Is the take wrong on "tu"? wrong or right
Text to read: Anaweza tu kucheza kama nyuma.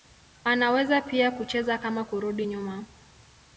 wrong